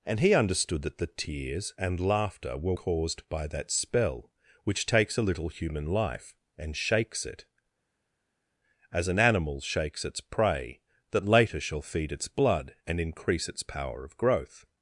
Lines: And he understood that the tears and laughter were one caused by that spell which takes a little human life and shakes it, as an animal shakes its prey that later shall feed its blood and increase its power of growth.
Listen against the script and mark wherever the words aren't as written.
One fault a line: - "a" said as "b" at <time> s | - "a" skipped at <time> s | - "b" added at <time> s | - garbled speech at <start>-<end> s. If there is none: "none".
- "one" skipped at 2.7 s